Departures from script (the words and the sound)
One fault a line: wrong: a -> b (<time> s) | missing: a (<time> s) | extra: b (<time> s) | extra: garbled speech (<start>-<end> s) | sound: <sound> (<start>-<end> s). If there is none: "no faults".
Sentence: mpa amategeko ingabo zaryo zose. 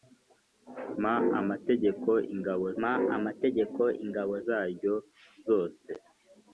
extra: mpa amategeko ingabo (2.8 s)